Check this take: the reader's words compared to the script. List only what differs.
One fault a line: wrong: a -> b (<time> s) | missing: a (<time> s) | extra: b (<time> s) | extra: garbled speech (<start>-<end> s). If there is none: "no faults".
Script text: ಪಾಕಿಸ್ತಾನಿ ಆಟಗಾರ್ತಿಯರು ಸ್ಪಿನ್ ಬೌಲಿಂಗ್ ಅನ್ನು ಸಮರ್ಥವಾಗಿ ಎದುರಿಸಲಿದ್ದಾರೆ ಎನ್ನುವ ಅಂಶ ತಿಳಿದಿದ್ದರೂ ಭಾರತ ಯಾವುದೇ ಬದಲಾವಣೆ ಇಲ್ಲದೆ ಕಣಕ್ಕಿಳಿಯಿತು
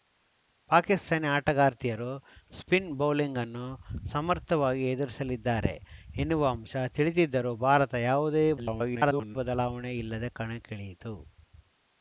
extra: garbled speech (8.6-9.4 s)